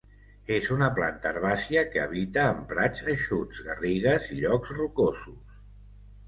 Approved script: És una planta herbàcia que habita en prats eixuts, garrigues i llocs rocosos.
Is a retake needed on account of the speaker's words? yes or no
no